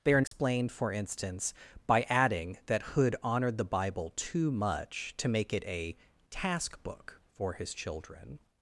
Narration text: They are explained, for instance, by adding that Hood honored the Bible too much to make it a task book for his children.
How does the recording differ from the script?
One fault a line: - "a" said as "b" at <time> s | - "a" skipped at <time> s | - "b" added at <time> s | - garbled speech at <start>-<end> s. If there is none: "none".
none